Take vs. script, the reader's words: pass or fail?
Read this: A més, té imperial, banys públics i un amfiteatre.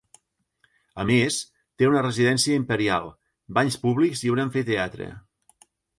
fail